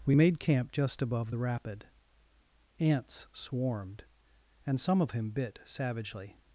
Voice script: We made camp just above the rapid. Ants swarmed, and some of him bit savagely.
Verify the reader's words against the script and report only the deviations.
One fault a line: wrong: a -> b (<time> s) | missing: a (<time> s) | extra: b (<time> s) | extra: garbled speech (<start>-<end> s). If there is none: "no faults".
no faults